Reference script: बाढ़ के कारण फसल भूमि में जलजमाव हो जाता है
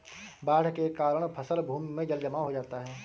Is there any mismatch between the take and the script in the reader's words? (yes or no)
no